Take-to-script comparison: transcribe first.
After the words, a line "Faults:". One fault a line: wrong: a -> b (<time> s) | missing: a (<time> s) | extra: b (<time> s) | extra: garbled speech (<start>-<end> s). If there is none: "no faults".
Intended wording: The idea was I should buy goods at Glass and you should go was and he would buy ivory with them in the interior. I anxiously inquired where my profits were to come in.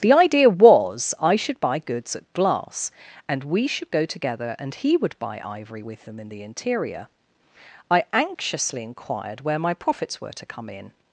The idea was I should buy goods at Glass and we should go together and he would buy ivory with them in the interior. I anxiously inquired where my profits were to come in.
Faults:
wrong: you -> we (3.4 s)
wrong: was -> together (4.0 s)